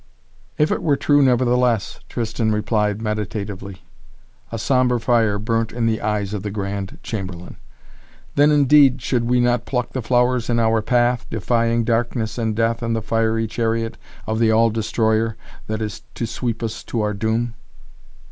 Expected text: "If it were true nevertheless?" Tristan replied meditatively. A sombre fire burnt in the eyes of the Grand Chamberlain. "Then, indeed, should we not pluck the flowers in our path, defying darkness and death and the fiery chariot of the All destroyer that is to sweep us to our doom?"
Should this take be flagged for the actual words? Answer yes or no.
no